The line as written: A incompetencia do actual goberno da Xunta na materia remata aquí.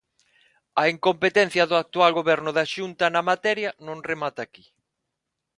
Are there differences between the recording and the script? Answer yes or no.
yes